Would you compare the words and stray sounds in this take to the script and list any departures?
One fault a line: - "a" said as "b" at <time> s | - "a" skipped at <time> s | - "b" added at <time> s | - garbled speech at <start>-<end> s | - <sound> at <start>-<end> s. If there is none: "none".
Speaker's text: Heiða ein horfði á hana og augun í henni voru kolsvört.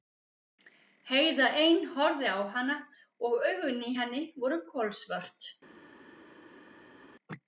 none